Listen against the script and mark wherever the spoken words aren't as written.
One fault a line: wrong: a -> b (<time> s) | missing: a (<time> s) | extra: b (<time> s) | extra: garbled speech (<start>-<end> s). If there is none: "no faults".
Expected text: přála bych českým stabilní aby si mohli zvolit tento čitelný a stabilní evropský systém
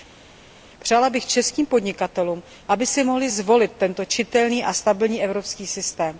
wrong: stabilní -> podnikatelům (1.7 s)